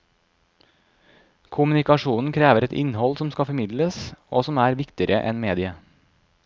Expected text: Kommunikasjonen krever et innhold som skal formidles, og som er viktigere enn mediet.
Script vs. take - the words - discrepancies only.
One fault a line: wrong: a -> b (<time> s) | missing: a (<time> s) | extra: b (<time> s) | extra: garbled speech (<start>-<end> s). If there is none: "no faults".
no faults